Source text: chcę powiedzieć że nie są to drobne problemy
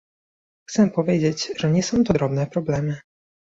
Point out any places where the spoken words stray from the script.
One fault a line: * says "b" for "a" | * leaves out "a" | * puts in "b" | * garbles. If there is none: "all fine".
all fine